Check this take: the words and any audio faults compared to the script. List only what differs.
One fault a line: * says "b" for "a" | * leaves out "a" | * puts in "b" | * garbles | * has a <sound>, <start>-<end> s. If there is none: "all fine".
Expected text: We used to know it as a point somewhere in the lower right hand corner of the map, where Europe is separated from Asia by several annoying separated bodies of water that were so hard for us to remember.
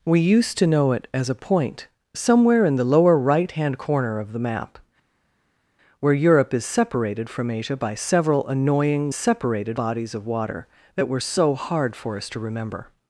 all fine